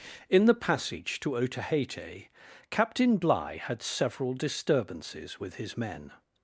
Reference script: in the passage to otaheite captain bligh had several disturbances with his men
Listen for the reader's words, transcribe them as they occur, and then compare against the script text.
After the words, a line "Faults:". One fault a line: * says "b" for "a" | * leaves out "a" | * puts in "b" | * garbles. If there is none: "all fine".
in the passage to otaheite captain bligh had several disturbances with his men
Faults:
all fine